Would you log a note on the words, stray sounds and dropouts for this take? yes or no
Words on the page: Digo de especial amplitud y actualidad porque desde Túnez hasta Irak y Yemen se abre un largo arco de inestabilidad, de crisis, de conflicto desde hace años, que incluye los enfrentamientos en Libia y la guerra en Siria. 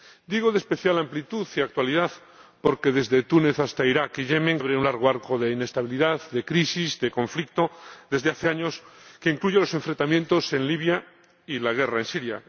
yes